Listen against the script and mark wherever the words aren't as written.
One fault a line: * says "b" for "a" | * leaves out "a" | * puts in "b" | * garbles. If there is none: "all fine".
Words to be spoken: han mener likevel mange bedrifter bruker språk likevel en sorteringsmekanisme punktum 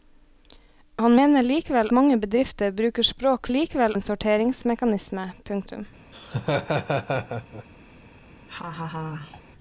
all fine